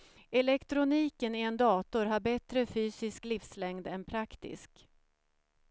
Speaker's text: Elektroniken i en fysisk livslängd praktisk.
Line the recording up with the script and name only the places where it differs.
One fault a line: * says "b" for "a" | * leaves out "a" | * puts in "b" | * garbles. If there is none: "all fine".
* puts in "dator har bättre"
* puts in "än"